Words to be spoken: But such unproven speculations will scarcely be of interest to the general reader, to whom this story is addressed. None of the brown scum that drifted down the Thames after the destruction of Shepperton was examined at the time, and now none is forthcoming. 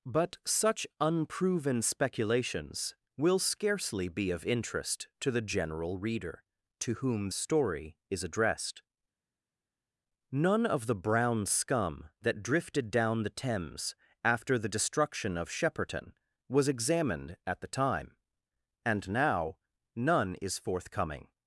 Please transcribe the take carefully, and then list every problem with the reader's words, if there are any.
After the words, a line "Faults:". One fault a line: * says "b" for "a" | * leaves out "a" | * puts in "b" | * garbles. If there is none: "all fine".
But such unproven speculations will scarcely be of interest to the general reader, to whom story is addressed. None of the brown scum that drifted down the Thames after the destruction of Shepperton was examined at the time, and now none is forthcoming.
Faults:
* leaves out "this"